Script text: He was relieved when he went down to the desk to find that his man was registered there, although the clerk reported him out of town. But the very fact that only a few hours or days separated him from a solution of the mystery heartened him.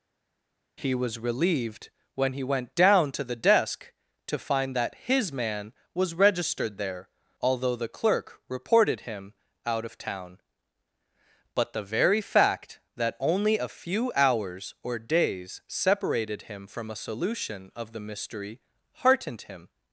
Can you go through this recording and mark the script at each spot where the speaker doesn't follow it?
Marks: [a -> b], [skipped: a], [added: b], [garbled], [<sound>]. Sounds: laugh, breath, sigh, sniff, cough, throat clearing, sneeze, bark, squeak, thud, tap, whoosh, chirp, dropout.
He was relieved when he went down to the desk to find that his man was registered there, although the clerk reported him out of town. But the very fact that only a few hours or days separated him from a solution of the mystery heartened him.